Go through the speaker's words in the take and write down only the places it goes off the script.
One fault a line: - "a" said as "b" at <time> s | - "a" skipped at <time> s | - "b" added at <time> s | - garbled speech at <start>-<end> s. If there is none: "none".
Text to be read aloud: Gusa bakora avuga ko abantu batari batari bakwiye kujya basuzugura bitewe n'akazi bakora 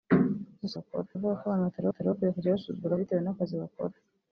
none